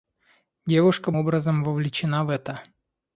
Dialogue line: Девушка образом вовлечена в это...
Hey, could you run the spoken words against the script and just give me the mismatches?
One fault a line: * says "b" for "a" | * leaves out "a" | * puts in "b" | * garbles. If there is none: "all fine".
all fine